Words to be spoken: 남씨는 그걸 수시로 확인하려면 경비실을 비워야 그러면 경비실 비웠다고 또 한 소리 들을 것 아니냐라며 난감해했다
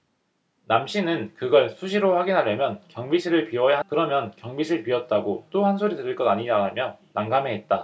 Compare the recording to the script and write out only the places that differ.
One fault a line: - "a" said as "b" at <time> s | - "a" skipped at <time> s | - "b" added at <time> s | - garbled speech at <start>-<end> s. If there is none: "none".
none